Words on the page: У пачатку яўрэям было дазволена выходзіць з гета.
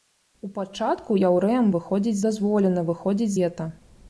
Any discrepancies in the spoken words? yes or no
yes